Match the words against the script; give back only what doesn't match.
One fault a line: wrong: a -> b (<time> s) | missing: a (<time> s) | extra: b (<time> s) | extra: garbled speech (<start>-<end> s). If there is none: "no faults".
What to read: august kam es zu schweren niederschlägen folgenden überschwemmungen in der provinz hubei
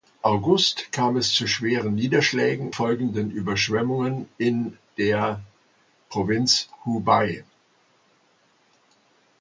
no faults